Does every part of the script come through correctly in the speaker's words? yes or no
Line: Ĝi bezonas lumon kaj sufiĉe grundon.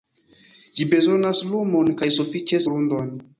yes